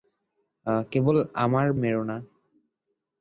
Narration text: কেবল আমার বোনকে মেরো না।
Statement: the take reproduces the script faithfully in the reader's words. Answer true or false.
false